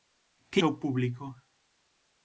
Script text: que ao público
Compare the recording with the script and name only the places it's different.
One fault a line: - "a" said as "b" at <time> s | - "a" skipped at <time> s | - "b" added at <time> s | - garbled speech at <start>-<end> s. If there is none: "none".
none